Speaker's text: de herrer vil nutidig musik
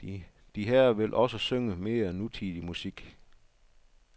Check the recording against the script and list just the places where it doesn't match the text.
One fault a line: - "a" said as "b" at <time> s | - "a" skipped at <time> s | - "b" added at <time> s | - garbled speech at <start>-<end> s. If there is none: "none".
- "også synge mere" added at 1.1 s